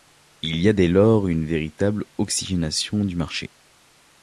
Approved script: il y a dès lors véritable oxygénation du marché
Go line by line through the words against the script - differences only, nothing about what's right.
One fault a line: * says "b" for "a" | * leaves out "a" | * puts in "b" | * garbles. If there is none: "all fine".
* puts in "une"